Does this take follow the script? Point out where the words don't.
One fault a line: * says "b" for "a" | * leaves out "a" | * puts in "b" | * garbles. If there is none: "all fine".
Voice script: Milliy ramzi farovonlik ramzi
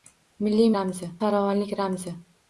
all fine